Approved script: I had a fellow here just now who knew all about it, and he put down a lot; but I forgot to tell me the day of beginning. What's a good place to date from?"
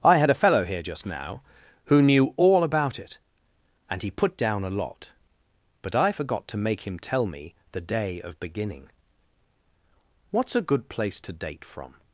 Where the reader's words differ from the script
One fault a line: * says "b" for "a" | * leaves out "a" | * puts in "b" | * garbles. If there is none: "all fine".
* puts in "make him"